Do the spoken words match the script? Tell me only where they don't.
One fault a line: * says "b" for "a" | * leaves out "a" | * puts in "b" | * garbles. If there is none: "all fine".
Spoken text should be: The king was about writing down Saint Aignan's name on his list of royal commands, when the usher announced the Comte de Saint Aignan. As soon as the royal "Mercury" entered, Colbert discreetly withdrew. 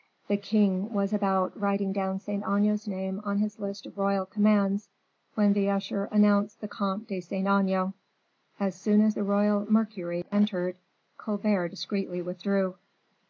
all fine